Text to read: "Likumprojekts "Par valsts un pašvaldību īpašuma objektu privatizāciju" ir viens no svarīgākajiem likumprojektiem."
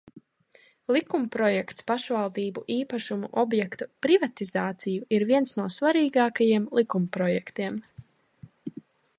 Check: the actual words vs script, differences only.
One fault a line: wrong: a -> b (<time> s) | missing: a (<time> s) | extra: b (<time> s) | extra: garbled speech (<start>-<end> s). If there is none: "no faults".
missing: Par valsts un (1.9 s)